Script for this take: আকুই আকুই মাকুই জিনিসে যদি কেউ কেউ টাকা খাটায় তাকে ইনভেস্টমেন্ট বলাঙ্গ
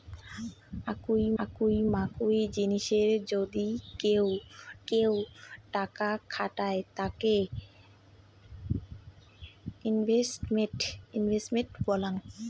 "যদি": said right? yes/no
yes